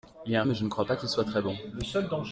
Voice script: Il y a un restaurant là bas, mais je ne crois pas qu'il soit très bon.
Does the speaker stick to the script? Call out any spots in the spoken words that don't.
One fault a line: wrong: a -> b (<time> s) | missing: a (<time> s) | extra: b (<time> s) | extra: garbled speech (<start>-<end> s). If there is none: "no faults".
missing: restaurant là bas (0.5 s)